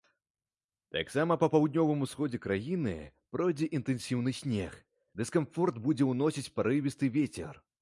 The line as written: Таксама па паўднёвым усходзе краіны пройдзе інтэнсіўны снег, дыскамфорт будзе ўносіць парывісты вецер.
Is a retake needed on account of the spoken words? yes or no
no